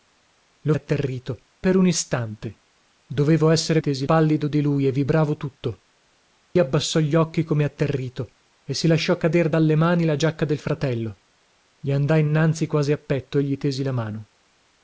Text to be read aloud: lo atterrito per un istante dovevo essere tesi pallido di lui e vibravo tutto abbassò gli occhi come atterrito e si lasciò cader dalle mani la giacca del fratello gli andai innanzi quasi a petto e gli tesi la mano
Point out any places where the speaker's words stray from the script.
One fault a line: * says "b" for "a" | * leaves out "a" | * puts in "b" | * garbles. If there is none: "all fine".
all fine